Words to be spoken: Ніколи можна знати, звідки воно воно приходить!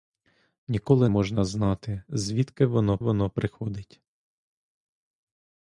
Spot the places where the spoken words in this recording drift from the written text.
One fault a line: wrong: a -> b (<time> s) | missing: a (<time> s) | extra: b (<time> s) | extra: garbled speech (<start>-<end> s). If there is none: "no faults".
no faults